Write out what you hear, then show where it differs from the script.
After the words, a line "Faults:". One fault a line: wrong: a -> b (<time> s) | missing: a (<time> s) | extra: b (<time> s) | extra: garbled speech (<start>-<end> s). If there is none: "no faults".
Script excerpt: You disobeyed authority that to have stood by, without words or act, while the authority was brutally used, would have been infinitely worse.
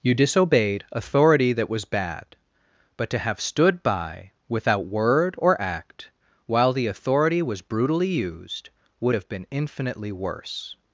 You disobeyed authority that was bad; but to have stood by, without word or act, while the authority was brutally used, would have been infinitely worse.
Faults:
extra: was bad but (1.7 s)
wrong: words -> word (4.9 s)